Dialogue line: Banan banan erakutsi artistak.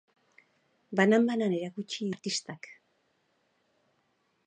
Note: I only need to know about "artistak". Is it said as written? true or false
true